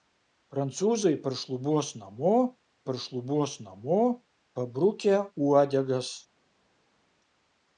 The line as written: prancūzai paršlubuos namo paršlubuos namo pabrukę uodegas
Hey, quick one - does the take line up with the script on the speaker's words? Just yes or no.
yes